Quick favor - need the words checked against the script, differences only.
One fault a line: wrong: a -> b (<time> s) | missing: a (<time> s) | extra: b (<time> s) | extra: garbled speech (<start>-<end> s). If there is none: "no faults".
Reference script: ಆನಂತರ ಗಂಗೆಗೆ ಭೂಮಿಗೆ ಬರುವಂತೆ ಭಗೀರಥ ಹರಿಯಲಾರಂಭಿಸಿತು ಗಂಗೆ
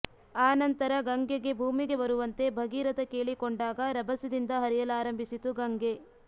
extra: ಕೇಳಿಕೊಂಡಾಗ ರಭಸದಿಂದ (3.1 s)